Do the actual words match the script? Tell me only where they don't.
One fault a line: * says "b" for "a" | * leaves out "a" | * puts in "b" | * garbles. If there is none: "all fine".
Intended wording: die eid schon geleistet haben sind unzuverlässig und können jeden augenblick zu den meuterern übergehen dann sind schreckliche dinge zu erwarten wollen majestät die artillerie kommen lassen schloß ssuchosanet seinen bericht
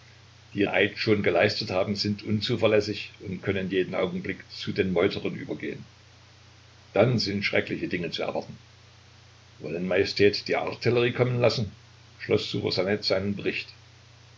all fine